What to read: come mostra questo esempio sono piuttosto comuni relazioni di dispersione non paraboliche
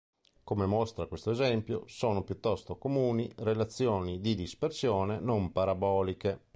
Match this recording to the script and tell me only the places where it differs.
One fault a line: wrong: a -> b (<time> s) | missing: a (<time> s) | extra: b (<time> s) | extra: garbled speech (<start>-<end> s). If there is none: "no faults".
no faults